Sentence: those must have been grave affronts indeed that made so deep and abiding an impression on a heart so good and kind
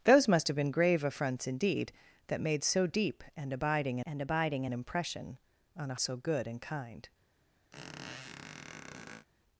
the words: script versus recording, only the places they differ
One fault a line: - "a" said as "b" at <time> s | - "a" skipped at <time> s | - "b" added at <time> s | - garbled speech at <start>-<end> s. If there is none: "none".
- "and abiding" added at 4.1 s
- "heart" skipped at 5.9 s